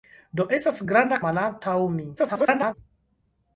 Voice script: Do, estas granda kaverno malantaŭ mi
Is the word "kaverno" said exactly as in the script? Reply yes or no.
no